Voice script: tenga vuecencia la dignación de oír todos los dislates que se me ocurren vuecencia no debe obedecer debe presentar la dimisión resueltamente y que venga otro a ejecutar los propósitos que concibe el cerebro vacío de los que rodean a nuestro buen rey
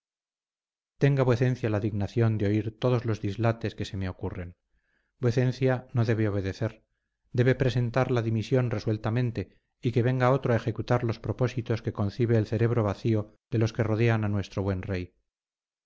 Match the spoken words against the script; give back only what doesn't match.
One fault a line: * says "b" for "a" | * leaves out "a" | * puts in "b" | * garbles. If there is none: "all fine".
all fine